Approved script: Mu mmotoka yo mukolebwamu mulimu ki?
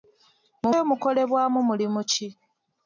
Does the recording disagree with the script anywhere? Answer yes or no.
yes